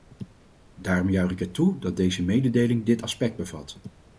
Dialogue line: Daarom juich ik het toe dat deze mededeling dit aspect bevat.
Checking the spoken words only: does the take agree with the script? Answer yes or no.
yes